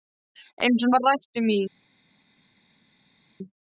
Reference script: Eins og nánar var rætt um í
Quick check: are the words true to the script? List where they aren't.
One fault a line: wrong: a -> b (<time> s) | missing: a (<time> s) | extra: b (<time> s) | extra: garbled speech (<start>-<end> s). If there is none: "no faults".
missing: nánar (0.9 s)